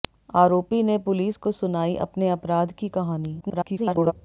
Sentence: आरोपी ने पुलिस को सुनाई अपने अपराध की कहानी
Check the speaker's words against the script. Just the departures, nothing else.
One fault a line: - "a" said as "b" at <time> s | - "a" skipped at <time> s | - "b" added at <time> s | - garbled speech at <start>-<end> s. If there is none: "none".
- garbled speech at 3.4-4.1 s